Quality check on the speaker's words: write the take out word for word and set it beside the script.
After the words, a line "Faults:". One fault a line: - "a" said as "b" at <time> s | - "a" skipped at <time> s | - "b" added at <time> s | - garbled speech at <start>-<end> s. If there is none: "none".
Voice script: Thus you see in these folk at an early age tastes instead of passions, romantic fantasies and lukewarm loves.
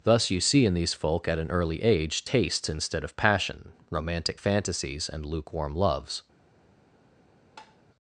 Thus you see in these folk at an early age tastes instead of passion, romantic fantasies and lukewarm loves.
Faults:
- "passions" said as "passion" at 3.2 s